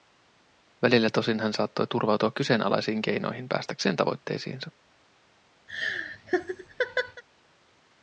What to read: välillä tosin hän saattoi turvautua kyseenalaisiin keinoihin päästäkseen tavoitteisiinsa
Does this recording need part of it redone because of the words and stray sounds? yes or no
yes